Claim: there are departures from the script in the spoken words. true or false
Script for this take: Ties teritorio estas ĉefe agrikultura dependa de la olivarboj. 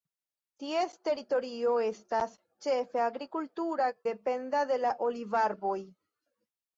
false